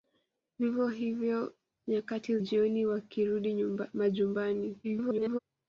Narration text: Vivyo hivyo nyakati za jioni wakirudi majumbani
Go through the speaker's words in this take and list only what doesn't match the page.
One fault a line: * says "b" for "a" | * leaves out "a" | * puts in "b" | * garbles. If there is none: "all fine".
* leaves out "za"
* garbles